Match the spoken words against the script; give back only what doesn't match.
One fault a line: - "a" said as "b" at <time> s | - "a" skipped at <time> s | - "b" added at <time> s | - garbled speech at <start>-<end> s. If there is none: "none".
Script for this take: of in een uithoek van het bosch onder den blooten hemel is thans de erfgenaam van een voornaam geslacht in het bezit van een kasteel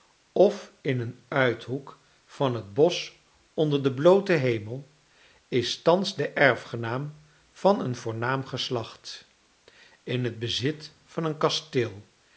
none